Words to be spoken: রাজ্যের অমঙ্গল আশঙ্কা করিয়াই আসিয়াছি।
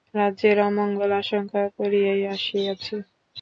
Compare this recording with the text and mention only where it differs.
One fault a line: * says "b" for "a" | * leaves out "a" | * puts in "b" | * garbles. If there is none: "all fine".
all fine